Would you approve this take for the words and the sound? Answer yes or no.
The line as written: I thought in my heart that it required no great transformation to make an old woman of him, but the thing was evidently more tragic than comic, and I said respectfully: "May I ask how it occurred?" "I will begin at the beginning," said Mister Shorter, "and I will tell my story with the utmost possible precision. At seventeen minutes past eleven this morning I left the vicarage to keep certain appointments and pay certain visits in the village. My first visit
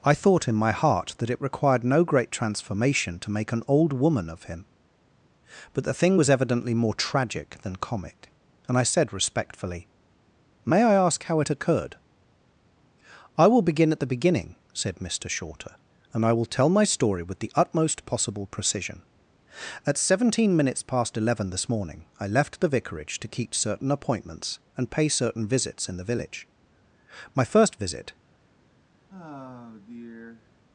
no